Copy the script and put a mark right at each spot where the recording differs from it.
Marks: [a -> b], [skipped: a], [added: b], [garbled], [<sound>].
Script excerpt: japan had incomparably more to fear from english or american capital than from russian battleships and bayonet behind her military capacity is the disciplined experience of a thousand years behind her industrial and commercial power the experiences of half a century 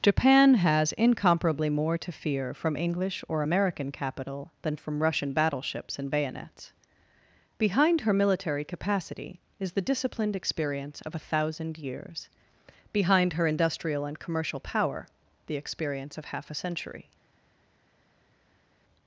japan [had -> has] incomparably more to fear from english or american capital than from russian battleships and [bayonet -> bayonets] behind her military capacity is the disciplined experience of a thousand years behind her industrial and commercial power the [experiences -> experience] of half a century